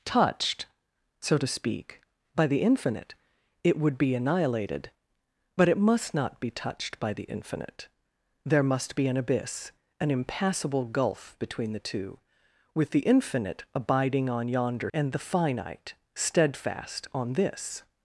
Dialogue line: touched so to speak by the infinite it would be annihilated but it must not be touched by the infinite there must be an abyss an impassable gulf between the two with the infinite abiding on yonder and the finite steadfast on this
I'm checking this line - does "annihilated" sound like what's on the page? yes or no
yes